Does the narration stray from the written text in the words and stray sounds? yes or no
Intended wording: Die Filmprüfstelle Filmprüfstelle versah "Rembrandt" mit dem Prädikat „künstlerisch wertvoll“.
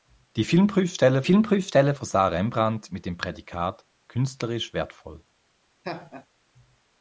yes